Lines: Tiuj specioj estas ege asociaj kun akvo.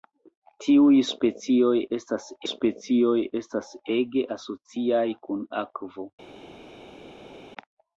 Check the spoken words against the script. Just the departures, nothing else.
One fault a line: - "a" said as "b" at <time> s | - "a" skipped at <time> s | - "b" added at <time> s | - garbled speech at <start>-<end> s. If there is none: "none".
- "specioj estas" added at 2.5 s